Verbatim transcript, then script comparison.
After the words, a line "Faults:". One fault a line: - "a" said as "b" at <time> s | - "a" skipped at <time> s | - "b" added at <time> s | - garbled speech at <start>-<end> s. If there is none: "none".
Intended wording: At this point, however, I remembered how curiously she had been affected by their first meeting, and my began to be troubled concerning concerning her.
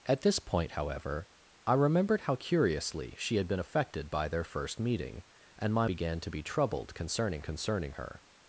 At this point, however, I remembered how curiously she had been affected by their first meeting, and my began to be troubled concerning concerning her.
Faults:
none